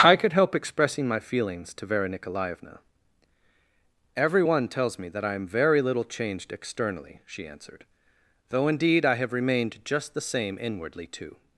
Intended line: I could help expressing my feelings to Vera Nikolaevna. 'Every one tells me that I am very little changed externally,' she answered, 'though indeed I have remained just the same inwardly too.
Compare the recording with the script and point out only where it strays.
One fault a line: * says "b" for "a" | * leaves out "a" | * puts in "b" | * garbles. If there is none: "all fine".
all fine